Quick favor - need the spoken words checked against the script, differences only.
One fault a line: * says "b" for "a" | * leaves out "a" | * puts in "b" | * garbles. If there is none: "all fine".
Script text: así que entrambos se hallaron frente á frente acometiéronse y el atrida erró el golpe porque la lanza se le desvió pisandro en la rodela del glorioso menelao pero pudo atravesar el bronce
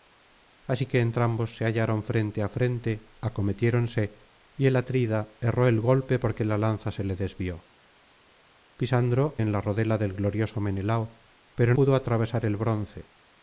all fine